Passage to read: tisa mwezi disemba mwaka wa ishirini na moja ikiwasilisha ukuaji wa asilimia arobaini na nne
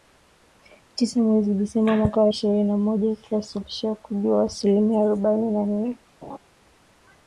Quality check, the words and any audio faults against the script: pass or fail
fail